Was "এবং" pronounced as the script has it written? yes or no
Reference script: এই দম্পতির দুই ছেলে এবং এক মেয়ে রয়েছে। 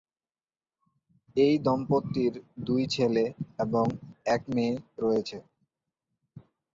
yes